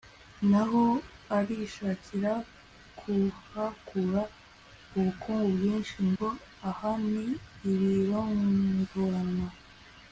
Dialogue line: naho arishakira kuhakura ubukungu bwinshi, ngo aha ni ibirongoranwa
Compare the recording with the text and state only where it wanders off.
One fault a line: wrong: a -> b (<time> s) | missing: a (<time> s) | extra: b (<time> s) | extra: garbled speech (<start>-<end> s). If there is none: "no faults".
no faults